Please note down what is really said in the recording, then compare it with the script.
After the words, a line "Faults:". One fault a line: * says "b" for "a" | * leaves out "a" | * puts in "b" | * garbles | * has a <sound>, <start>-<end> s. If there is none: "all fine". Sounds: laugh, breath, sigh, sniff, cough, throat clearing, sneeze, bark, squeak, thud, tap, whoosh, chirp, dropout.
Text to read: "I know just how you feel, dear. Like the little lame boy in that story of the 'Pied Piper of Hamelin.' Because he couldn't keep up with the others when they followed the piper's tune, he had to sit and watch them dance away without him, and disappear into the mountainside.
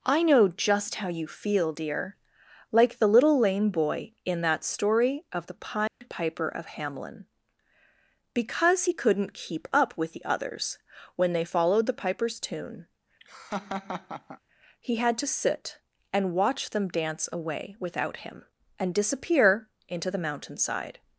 "I know just how you feel, dear. Like the little lame boy in that story of the 'Pied Piper of Hamelin.' Because he couldn't keep up with the others when they followed the piper's tune, he had to sit and watch them dance away without him, and disappear into the mountainside.
Faults:
* has a dropout, 5.9-6.0 s
* has a laugh, 13.2-14.4 s